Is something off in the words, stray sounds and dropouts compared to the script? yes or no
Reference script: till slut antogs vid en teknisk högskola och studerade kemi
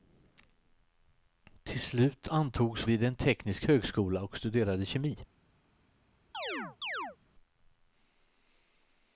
yes